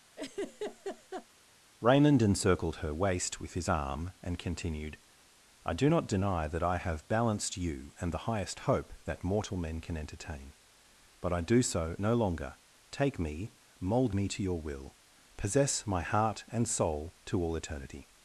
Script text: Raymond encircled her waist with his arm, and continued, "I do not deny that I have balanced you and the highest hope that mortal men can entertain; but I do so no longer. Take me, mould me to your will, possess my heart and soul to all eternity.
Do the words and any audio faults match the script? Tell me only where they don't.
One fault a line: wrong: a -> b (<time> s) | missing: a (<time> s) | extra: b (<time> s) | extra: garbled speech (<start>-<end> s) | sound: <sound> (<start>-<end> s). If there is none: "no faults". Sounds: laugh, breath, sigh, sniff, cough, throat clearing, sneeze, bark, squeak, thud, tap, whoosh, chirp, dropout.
sound: laugh (0.2-1.3 s)